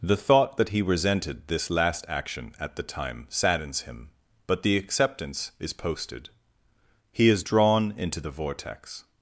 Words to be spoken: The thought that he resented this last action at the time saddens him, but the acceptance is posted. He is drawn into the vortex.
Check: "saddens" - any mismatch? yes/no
no